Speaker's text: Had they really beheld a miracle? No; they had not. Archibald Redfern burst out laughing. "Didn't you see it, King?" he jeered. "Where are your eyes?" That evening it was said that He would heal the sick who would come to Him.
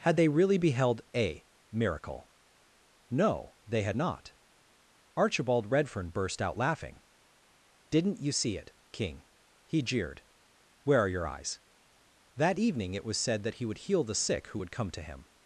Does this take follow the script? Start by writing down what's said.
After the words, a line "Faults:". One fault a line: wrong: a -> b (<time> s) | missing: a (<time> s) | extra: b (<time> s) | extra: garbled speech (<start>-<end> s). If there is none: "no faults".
Had they really beheld a miracle? No; they had not. Archibald Redfern burst out laughing. "Didn't you see it, King?" he jeered. "Where are your eyes?" That evening it was said that He would heal the sick who would come to Him.
Faults:
no faults